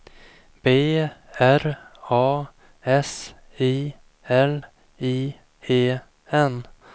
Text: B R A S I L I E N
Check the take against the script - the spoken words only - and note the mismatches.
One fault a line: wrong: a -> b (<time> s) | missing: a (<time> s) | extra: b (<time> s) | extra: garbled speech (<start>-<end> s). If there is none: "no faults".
no faults